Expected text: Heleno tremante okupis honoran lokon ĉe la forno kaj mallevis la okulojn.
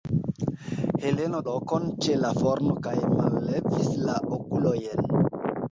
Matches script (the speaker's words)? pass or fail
fail